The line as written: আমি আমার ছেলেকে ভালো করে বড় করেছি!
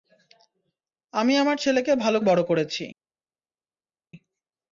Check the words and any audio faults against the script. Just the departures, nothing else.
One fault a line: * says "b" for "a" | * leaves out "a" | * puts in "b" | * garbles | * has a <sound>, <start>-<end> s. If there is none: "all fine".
* leaves out "করে"